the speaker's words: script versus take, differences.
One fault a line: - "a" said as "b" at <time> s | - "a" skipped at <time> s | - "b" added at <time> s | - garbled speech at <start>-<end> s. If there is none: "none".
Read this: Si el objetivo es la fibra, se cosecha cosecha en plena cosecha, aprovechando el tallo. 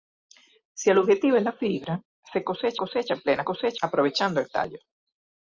none